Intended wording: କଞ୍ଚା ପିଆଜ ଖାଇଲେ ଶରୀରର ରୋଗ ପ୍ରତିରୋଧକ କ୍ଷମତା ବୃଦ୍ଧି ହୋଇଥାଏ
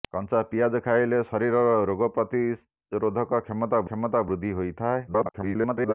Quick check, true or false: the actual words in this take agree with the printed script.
false